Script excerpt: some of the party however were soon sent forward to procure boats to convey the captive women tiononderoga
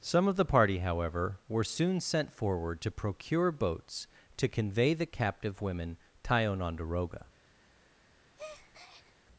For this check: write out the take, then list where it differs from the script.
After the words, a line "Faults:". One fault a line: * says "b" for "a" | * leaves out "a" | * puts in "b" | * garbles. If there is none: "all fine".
some of the party however were soon sent forward to procure boats to convey the captive women tiononderoga
Faults:
all fine